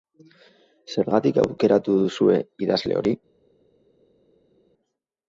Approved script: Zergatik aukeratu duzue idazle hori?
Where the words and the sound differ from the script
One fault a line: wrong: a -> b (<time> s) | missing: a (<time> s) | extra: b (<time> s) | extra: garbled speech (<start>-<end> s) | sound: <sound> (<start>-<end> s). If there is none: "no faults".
no faults